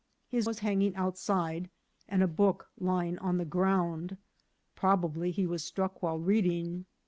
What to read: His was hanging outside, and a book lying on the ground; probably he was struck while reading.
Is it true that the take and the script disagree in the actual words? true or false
false